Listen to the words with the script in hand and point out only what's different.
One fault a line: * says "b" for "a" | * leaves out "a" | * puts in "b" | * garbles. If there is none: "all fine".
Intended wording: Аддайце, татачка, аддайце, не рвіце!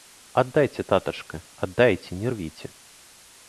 all fine